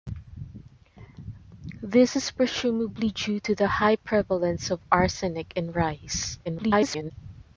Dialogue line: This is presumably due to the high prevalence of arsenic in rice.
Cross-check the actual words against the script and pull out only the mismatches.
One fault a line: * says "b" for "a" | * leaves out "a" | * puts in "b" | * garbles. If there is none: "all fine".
* garbles